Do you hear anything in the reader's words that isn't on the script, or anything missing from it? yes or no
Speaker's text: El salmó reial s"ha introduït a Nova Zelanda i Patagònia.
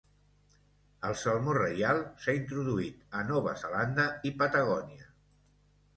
no